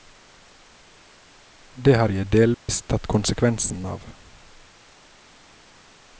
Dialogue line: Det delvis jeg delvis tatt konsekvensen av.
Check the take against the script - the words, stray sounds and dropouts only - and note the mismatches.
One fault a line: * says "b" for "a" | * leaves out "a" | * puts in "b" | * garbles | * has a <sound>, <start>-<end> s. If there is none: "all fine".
* says "har" for "delvis"
* has a dropout, 2.5-2.7 s